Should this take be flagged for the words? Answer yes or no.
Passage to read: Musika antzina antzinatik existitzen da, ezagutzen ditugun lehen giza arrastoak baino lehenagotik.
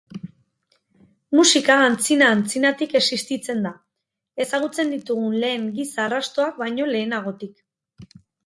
no